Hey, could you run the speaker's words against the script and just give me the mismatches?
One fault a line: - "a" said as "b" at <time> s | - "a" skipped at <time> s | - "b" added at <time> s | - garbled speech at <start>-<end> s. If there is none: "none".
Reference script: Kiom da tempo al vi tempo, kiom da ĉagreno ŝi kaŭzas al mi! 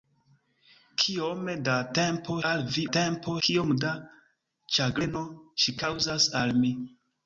none